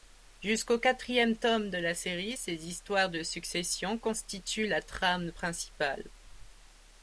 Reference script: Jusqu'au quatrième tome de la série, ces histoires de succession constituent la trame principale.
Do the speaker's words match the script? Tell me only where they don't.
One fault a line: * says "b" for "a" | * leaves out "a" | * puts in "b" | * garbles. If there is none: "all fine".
all fine